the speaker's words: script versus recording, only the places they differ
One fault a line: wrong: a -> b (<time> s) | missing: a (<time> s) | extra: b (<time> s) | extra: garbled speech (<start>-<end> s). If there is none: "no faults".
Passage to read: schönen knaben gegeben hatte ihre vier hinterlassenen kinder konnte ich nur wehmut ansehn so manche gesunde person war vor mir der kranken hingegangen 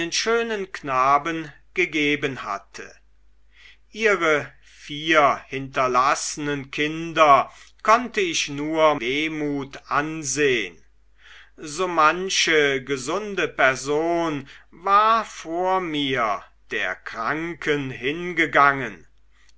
no faults